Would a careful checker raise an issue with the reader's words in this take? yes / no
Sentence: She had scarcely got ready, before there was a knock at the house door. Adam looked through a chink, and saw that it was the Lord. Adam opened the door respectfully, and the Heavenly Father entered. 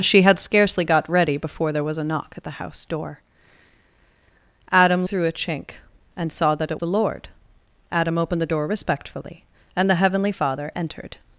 yes